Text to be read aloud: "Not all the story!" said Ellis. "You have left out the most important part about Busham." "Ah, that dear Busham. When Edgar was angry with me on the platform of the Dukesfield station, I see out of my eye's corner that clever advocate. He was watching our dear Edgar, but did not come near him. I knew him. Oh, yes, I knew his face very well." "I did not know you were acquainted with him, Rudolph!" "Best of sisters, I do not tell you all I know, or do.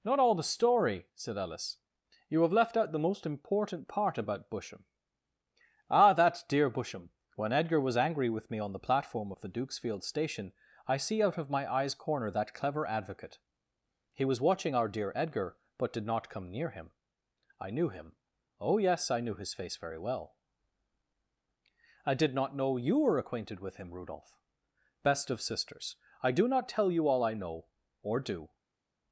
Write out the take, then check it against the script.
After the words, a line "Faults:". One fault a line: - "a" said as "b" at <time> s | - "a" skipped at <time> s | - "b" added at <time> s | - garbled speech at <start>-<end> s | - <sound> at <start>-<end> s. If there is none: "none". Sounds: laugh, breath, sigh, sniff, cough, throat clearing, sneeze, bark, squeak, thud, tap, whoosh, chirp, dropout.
"Not all the story!" said Ellis. "You have left out the most important part about Busham." "Ah, that dear Busham. When Edgar was angry with me on the platform of the Dukesfield station, I see out of my eye's corner that clever advocate. He was watching our dear Edgar, but did not come near him. I knew him. Oh, yes, I knew his face very well." "I did not know you were acquainted with him, Rudolph!" "Best of sisters, I do not tell you all I know, or do.
Faults:
none